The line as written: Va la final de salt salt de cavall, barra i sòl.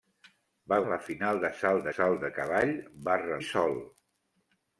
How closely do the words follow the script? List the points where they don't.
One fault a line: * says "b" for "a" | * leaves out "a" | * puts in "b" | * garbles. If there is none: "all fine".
all fine